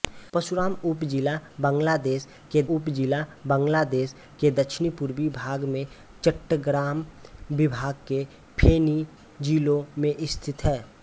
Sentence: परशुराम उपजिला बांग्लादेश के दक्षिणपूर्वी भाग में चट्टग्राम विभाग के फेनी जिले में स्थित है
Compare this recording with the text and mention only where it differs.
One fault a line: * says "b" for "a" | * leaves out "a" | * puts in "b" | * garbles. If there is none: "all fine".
* puts in "उपजिला बांग्लादेश के"